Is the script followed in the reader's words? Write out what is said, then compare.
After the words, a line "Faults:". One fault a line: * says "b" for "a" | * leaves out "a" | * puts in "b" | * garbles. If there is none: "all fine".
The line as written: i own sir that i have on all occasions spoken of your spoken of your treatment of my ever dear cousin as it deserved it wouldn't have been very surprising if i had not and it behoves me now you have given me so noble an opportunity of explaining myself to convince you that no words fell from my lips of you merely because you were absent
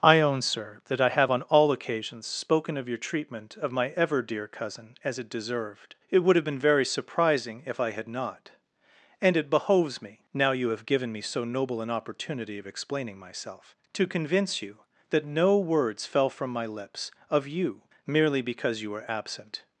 i own sir that i have on all occasions spoken of your treatment of my ever dear cousin as it deserved it would have been very surprising if i had not and it behoves me now you have given me so noble an opportunity of explaining myself to convince you that no words fell from my lips of you merely because you were absent
Faults:
* leaves out "spoken of your"
* says "would" for "wouldn't"